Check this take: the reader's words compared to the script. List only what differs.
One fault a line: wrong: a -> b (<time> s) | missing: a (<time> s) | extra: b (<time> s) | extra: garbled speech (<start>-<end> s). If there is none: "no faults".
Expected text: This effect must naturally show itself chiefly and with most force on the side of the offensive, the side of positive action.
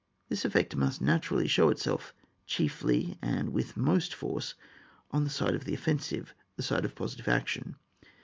no faults